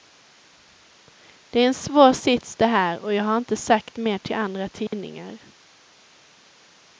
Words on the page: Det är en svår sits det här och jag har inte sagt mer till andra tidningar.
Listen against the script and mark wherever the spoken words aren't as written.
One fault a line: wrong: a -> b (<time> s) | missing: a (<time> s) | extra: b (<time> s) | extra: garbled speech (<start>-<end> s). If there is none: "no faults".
no faults